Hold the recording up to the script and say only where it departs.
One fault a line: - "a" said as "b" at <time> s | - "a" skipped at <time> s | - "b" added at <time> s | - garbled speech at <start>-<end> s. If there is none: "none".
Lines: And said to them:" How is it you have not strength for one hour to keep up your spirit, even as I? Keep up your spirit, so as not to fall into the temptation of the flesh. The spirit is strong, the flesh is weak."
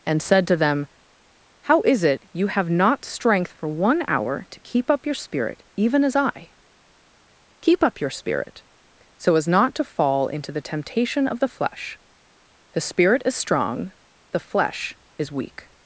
none